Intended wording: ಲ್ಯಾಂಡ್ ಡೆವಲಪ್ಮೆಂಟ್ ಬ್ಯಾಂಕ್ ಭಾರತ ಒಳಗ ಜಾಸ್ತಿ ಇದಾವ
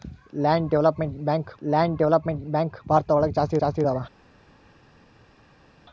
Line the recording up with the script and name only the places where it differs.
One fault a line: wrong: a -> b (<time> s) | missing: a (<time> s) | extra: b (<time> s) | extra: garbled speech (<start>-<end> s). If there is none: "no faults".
extra: ಲ್ಯಾಂಡ್ ಡೆವಲಪ್ಮೆಂಟ್ ಬ್ಯಾಂಕ್ (1.6 s)
extra: ಜಾಸ್ತಿ (3.5 s)